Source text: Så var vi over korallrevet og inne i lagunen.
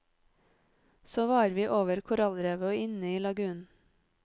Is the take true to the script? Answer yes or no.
yes